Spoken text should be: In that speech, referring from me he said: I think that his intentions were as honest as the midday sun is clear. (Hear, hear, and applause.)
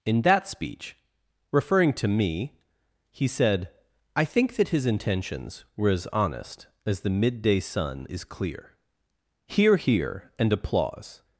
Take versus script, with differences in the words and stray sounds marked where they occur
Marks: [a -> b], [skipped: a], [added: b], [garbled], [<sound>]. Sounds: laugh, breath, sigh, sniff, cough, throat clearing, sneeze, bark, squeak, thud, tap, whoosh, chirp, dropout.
In that speech, referring [from -> to] me he said: I think that his intentions were as honest as the midday sun is clear. (Hear, hear, and applause.)